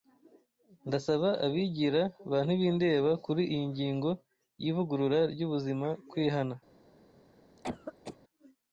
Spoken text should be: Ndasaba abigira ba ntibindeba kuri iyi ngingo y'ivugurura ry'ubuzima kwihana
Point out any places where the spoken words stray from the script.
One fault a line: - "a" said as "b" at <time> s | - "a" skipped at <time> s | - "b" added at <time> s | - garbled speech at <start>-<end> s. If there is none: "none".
none